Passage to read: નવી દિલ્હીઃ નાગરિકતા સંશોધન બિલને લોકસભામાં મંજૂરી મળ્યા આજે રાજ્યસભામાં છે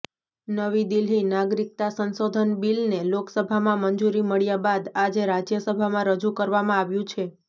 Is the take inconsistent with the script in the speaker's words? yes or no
yes